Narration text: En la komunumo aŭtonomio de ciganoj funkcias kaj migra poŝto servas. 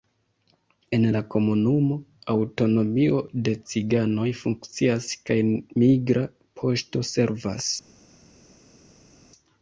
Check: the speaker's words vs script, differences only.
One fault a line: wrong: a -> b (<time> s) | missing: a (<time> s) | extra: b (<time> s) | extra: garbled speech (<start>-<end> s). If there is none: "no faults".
no faults